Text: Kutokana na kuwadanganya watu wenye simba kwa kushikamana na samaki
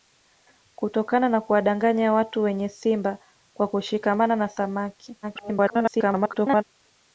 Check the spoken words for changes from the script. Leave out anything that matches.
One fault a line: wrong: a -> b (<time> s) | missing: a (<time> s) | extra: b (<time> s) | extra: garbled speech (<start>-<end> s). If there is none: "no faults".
extra: garbled speech (5.2-6.6 s)